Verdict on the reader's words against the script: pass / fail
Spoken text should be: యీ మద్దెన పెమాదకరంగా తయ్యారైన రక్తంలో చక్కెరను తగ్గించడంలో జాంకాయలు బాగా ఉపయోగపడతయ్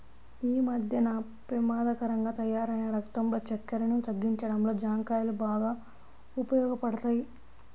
pass